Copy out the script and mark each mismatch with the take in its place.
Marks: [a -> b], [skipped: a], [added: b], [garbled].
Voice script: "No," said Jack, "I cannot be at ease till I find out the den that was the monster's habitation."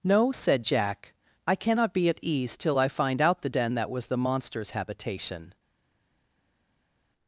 "No," said Jack, "I cannot be at ease till I find out the den that was the monster's habitation."